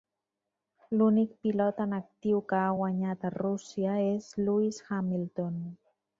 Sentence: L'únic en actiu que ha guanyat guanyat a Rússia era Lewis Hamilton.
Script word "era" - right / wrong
wrong